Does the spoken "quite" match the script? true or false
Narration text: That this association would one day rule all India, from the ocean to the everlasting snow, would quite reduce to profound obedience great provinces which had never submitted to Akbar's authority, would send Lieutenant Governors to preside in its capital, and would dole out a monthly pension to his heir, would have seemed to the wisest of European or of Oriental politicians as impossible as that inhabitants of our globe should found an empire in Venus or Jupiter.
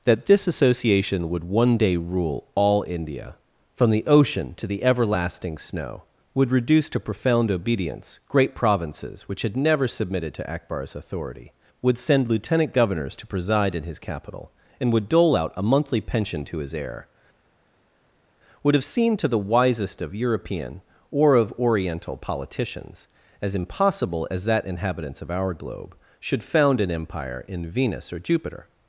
false